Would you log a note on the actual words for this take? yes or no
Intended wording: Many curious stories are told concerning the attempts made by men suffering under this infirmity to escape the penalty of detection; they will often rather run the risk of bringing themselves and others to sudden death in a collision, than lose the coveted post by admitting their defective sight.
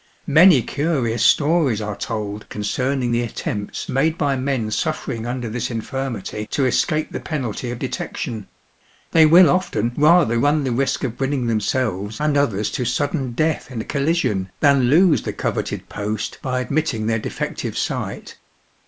no